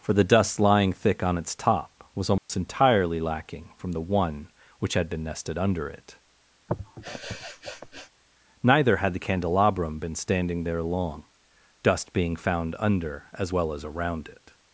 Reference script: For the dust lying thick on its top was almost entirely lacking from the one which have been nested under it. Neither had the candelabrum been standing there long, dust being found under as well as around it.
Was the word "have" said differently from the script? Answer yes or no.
yes